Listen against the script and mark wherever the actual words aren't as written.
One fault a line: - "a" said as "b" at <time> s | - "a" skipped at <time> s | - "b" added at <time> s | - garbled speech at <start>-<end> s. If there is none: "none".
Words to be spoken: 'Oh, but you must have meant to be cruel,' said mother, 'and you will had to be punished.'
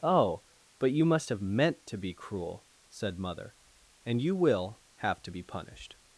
- "had" said as "have" at 5.0 s